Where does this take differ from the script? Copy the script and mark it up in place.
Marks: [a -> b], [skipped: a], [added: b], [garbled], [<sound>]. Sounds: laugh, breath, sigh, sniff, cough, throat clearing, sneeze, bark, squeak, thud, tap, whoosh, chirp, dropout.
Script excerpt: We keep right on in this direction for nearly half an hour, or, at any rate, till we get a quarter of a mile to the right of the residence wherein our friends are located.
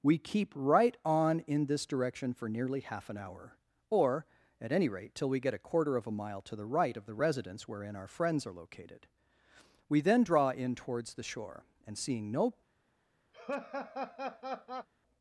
We keep right on in this direction for nearly half an hour, or, at any rate, till we get a quarter of a mile to the right of the residence wherein our friends are located. [added: We then draw in towards the shore and seeing no] [laugh]